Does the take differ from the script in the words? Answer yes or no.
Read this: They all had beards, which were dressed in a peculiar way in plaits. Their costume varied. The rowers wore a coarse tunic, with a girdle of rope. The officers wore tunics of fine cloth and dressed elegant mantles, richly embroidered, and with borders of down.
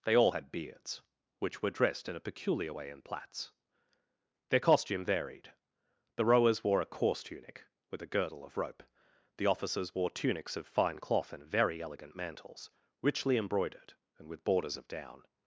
yes